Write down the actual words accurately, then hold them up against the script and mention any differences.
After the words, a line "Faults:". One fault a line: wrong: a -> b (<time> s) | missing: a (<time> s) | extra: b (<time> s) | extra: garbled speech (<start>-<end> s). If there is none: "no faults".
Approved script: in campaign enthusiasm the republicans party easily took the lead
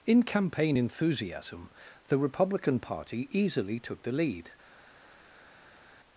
in campaign enthusiasm the republican party easily took the lead
Faults:
wrong: republicans -> republican (2.2 s)